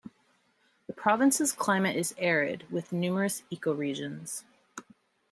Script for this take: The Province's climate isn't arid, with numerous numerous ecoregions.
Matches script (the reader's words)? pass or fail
fail